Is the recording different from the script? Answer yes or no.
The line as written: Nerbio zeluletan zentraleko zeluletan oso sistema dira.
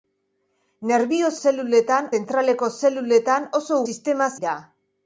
no